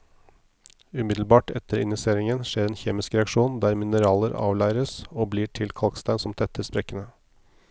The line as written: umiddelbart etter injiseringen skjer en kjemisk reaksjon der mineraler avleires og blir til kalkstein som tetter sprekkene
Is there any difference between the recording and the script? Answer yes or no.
no